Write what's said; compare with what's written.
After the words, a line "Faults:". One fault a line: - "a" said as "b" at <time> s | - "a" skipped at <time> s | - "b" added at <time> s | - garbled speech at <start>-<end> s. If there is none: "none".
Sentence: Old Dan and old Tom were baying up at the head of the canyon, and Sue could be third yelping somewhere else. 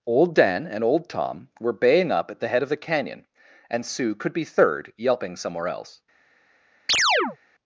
Old Dan and old Tom were baying up at the head of the canyon, and Sue could be third yelping somewhere else.
Faults:
none